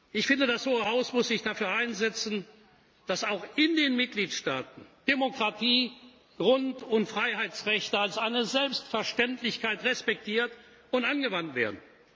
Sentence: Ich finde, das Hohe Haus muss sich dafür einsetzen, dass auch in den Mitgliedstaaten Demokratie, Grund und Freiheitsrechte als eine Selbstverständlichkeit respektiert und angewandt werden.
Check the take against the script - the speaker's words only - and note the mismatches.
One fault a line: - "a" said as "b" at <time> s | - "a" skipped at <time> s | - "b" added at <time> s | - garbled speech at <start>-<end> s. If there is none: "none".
none